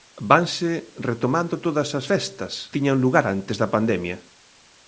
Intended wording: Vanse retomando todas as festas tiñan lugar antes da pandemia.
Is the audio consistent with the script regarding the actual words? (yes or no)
yes